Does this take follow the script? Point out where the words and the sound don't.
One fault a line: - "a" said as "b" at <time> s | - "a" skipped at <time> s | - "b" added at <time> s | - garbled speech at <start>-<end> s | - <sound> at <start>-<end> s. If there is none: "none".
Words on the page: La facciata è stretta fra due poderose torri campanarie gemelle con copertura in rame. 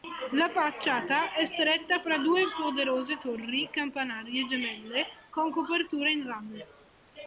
none